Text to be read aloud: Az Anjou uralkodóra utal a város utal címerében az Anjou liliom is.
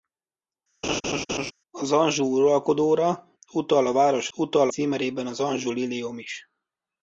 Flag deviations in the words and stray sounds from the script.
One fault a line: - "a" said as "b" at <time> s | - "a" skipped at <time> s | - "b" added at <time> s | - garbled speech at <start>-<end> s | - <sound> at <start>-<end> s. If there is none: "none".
- laugh at 0.8-1.5 s